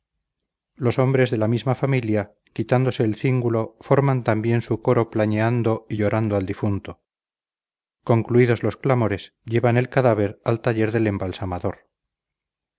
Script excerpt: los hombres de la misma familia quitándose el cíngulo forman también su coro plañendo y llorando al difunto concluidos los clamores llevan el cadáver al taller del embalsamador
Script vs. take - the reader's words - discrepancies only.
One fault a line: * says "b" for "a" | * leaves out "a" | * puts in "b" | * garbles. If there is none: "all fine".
all fine